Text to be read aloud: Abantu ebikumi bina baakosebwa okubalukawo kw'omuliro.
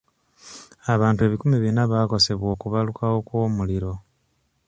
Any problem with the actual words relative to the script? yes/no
no